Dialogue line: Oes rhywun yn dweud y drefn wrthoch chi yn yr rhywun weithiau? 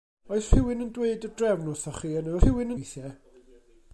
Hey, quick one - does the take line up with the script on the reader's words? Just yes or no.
yes